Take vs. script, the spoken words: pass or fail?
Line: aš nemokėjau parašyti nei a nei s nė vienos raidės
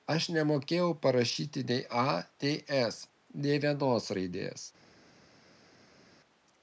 pass